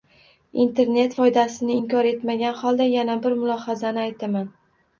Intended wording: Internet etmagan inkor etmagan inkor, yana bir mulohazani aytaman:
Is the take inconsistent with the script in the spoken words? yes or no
yes